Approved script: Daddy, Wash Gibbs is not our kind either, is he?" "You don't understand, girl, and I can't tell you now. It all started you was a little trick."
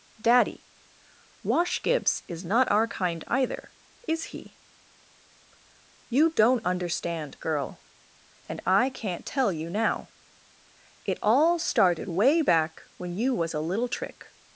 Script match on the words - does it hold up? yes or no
no